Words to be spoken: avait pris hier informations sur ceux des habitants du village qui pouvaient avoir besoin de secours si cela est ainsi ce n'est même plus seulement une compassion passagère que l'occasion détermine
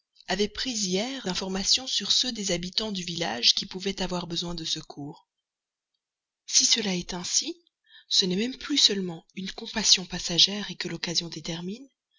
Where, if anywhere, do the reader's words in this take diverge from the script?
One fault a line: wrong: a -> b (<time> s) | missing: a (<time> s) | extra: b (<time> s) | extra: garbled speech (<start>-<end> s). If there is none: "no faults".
no faults